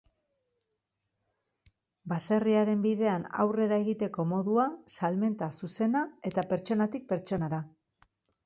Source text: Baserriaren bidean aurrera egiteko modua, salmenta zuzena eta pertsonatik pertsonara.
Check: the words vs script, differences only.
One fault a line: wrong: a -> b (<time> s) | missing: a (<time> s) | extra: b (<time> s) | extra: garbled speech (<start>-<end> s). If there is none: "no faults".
no faults